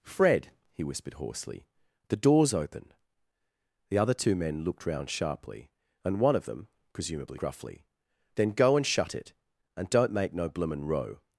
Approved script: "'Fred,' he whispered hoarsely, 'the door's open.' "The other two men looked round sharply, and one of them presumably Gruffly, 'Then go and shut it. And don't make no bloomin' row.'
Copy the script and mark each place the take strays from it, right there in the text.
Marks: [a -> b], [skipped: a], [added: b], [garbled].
"'Fred,' he whispered hoarsely, 'the door's open.' "The other two men looked round sharply, and one of them presumably Gruffly, 'Then go and shut it. And don't make no bloomin' row.'